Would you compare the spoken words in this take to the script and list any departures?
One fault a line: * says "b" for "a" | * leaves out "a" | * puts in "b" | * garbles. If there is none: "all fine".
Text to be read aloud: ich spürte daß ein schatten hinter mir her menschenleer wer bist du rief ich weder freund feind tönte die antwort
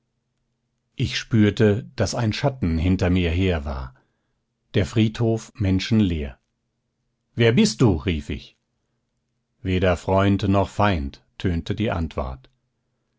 * puts in "war der friedhof"
* puts in "noch"